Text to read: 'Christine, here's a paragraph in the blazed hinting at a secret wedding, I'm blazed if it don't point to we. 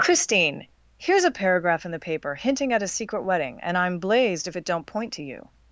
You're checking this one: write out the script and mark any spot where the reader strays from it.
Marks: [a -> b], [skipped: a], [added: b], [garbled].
'Christine, here's a paragraph in the [blazed -> paper] hinting at a secret wedding, [added: and] I'm blazed if it don't point to [we. -> you]